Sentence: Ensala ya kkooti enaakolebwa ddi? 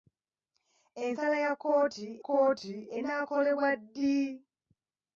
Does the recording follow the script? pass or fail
fail